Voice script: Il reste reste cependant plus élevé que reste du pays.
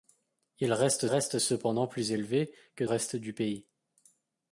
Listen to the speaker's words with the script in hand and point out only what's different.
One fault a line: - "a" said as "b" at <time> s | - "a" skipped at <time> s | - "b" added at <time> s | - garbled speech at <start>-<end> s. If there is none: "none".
none